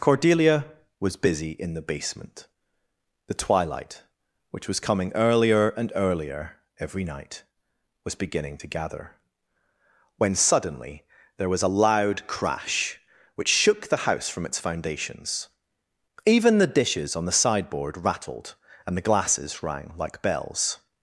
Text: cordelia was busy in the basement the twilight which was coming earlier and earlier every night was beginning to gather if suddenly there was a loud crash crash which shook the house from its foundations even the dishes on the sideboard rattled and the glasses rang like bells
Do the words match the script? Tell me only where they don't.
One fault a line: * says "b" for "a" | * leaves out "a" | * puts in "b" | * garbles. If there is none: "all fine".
* says "when" for "if"
* leaves out "crash"